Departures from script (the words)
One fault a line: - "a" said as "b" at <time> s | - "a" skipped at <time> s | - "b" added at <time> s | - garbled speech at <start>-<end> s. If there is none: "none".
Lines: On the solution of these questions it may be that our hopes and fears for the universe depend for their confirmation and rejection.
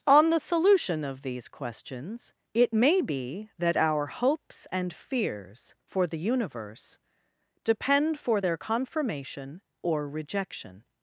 - "and" said as "or" at 9.8 s